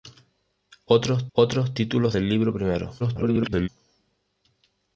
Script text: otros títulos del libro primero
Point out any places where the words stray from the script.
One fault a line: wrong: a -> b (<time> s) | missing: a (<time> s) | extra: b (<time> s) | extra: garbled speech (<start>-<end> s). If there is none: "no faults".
extra: otros (1.3 s)
extra: garbled speech (3.0-3.7 s)